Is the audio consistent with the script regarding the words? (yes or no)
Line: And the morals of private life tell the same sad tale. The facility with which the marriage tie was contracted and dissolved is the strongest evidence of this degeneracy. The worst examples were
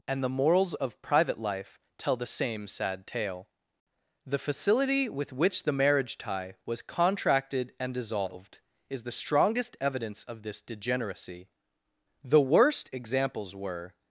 yes